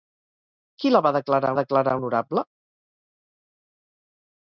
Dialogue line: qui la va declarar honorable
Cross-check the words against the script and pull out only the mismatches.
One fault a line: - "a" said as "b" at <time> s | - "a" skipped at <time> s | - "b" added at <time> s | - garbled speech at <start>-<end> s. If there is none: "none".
- "declarar" added at 1.6 s